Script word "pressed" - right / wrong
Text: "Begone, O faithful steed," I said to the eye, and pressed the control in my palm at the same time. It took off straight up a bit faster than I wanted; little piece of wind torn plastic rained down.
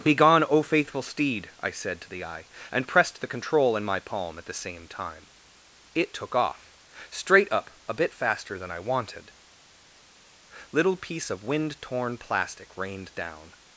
right